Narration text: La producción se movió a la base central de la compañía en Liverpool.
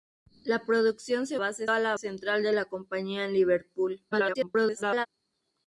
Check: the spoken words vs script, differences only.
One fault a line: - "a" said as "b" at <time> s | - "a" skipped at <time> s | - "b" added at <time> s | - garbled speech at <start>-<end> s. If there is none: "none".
- "movió" said as "base" at 1.4 s
- "base" skipped at 1.9 s
- garbled speech at 4.1-5.1 s